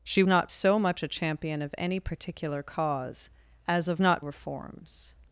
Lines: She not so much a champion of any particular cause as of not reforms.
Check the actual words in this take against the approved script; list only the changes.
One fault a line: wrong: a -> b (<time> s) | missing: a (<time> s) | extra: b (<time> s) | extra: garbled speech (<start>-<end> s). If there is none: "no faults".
no faults